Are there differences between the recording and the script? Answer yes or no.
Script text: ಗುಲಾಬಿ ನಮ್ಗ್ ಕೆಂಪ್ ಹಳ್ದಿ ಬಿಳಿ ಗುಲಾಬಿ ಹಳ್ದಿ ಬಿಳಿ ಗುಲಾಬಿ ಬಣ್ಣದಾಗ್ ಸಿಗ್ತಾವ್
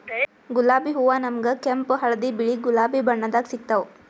yes